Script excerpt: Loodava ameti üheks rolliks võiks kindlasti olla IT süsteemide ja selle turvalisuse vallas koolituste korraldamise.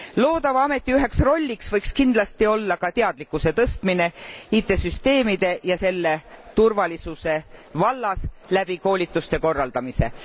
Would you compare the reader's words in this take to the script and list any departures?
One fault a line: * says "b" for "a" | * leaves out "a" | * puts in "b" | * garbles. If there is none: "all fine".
* puts in "ka teadlikkuse tõstmine"
* puts in "läbi"